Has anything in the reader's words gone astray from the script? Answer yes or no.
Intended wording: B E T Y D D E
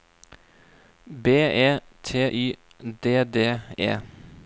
no